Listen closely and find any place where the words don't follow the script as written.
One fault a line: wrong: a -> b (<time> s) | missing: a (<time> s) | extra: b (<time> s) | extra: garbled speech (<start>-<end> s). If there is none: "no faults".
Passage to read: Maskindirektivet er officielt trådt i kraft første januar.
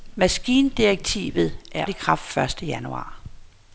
missing: officielt trådt (1.9 s)